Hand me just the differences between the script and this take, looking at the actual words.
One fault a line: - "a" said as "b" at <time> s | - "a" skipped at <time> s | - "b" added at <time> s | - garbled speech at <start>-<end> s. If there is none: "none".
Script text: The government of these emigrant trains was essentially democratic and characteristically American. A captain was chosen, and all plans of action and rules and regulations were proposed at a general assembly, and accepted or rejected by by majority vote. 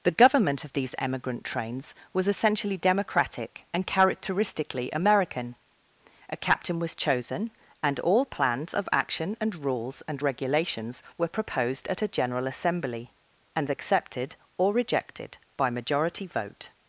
- "by" skipped at 15.7 s